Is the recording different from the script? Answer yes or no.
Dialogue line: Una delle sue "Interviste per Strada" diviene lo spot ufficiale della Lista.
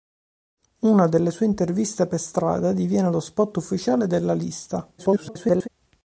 yes